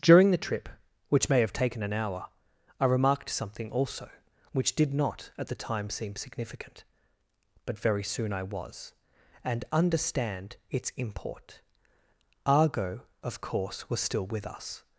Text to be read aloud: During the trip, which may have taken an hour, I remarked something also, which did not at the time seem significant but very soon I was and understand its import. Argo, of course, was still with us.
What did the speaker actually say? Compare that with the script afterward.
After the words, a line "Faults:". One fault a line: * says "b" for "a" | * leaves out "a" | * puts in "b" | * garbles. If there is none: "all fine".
During the trip, which may have taken an hour, I remarked something also, which did not at the time seem significant but very soon I was and understand its import. Argo, of course, was still with us.
Faults:
all fine